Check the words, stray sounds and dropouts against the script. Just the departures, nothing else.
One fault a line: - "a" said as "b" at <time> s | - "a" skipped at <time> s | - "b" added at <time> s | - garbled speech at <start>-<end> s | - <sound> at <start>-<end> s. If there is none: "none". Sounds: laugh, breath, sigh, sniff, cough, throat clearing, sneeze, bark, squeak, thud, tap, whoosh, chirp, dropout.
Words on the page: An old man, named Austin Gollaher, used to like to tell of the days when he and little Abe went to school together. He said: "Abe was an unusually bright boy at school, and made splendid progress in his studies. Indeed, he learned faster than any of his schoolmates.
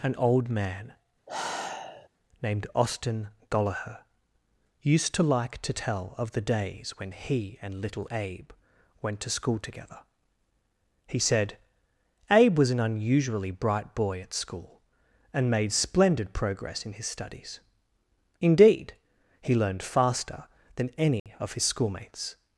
- sigh at 1.3-2.1 s
- dropout at 21.2-21.3 s